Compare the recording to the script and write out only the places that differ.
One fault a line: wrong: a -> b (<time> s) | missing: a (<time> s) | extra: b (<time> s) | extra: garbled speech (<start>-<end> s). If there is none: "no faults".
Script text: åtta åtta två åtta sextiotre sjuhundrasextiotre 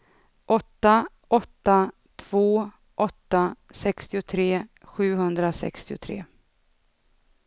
no faults